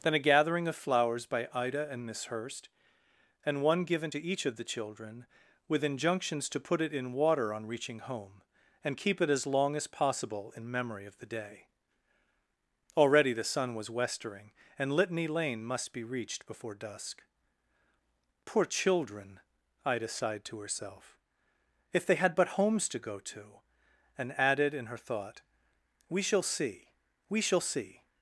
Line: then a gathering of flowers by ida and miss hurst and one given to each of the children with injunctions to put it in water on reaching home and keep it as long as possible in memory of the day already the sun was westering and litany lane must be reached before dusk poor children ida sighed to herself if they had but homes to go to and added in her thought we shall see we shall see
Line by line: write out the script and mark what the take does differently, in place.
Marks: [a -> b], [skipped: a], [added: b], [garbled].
then a gathering of flowers by ida and miss hurst and one given to each of the children with injunctions to put it in water on reaching home and keep it as long as possible in memory of the day already the sun was westering and litany lane must be reached before dusk poor children ida sighed to herself if they had but homes to go to and added in her thought we shall see we shall see